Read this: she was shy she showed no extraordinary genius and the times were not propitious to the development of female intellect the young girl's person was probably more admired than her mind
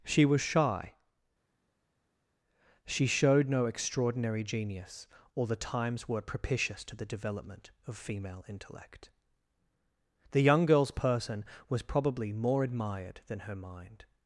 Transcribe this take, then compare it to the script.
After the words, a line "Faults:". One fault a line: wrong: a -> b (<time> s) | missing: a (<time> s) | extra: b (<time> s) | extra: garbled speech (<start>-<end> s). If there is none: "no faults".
she was shy she showed no extraordinary genius or the times were propitious to the development of female intellect the young girl's person was probably more admired than her mind
Faults:
wrong: and -> or (5.3 s)
missing: not (6.2 s)